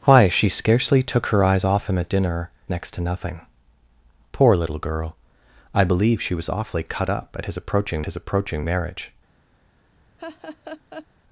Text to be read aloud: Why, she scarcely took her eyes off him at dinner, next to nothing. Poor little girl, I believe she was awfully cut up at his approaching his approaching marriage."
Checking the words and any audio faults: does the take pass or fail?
fail